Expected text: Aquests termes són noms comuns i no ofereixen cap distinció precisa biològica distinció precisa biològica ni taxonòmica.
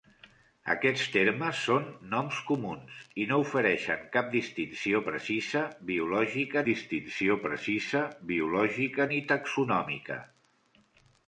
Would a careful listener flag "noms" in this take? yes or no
no